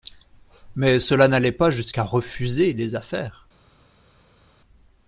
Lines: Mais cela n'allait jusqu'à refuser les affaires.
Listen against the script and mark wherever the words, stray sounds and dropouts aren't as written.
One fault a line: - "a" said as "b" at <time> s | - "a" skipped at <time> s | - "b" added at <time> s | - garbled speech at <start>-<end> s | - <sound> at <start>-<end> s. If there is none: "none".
- "pas" added at 1.5 s